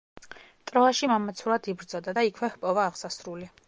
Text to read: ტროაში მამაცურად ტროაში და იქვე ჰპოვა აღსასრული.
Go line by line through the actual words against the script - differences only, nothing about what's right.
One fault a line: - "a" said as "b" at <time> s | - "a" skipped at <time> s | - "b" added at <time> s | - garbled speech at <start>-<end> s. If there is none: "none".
- "ტროაში" said as "იბრძოდა" at 1.7 s